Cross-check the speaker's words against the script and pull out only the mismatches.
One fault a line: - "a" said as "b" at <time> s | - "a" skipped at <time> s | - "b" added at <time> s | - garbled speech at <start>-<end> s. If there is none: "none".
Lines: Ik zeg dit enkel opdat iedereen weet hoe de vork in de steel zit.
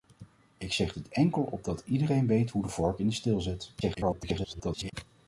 - garbled speech at 3.8-4.9 s